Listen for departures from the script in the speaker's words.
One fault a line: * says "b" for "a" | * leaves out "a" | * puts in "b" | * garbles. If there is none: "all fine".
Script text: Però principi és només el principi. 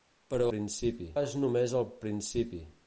all fine